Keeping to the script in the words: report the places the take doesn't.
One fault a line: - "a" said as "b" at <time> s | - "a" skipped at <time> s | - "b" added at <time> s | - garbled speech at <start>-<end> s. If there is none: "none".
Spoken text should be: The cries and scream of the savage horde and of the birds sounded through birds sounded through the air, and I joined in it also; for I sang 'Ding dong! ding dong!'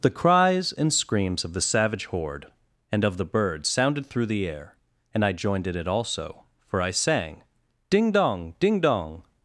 - "scream" said as "screams" at 0.9 s
- "birds sounded through" skipped at 4.3 s